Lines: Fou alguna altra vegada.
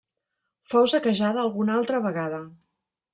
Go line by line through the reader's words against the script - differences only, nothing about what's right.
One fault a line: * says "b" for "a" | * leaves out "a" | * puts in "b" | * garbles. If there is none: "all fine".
* puts in "saquejada"